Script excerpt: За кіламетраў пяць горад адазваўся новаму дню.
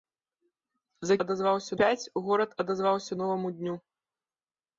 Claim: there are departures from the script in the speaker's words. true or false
true